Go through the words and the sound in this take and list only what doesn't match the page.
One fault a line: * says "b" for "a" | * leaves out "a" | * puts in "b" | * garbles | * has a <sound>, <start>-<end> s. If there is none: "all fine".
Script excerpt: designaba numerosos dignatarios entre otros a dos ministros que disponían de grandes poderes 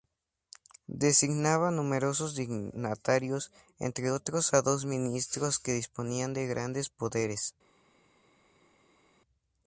all fine